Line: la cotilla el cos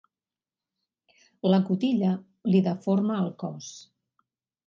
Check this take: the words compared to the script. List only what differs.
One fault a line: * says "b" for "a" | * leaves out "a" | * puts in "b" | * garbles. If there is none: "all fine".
* puts in "li deforma"